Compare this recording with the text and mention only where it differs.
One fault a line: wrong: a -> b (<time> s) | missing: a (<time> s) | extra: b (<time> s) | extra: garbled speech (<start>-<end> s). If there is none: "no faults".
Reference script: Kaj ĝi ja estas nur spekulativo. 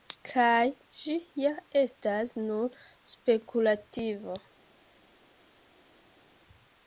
no faults